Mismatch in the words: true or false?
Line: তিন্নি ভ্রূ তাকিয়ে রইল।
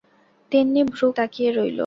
false